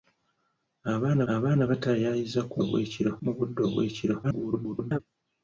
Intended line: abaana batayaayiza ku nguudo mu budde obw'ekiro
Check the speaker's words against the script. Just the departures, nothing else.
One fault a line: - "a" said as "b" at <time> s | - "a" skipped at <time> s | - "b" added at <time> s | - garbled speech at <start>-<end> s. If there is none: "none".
- "abaana" added at 1.3 s
- "nguudo" said as "obw'ekiro" at 2.6 s
- garbled speech at 4.2-5.0 s